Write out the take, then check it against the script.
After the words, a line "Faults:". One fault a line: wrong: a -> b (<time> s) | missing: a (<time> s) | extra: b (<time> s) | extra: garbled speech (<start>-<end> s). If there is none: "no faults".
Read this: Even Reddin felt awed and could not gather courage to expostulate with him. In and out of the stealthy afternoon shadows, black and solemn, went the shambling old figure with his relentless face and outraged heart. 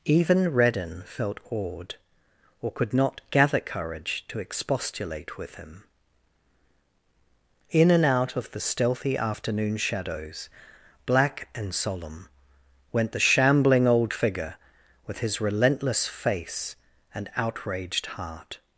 Even Reddin felt awed or could not gather courage to expostulate with him. In and out of the stealthy afternoon shadows, black and solemn, went the shambling old figure with his relentless face and outraged heart.
Faults:
wrong: and -> or (2.6 s)